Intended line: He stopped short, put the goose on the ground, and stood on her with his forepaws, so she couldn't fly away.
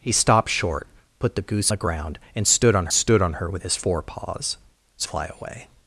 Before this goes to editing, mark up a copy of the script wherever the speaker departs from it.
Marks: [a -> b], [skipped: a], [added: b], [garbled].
He stopped short, put the goose [skipped: on] the ground, and stood on [added: stood on] her with his forepaws, so [skipped: she couldn't] fly away.